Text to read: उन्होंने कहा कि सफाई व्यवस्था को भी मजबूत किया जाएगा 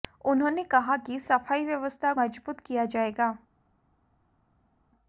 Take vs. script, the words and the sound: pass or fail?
fail